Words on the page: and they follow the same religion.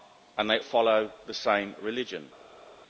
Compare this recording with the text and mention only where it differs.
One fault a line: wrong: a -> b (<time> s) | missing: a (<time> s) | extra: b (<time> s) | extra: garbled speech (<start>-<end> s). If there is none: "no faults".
no faults